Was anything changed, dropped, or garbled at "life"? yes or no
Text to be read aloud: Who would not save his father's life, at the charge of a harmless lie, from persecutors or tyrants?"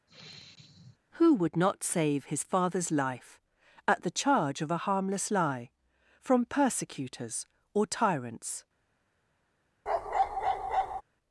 no